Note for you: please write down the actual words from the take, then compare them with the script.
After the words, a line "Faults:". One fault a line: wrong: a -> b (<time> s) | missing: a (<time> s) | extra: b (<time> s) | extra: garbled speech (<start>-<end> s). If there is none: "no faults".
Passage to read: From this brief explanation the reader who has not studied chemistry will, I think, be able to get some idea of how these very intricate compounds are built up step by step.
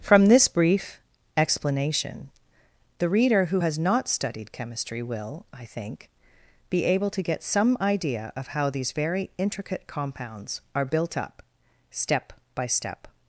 From this brief explanation the reader who has not studied chemistry will, I think, be able to get some idea of how these very intricate compounds are built up step by step.
Faults:
no faults